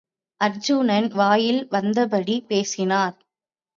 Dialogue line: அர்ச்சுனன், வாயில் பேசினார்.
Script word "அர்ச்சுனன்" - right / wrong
right